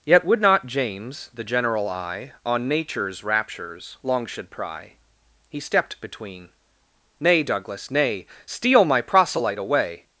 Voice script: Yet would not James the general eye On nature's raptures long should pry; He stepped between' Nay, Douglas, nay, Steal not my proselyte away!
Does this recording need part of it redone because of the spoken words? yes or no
yes